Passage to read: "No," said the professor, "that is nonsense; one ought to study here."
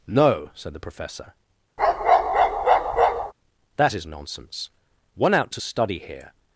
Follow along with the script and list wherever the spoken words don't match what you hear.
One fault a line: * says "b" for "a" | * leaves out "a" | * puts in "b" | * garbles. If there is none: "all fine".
* says "out" for "ought"